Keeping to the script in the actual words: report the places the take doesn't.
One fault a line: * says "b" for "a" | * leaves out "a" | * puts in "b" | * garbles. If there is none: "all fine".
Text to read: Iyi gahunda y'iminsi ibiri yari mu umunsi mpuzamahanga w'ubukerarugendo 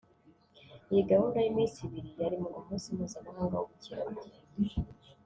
all fine